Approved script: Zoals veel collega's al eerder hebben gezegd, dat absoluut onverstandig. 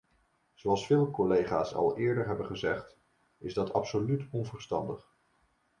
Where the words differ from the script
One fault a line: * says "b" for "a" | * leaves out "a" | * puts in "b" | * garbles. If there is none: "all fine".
* puts in "is"